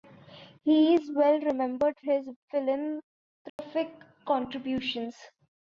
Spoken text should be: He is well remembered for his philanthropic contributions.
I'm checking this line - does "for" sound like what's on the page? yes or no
no